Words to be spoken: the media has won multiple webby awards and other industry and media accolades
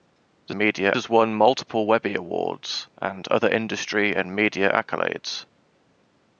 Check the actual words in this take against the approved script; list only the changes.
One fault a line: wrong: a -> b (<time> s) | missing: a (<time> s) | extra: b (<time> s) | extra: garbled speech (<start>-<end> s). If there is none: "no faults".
no faults